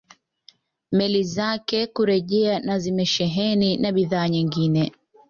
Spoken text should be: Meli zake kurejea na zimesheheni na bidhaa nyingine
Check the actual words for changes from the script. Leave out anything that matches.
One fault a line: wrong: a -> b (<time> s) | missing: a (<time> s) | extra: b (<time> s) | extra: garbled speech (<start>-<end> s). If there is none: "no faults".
no faults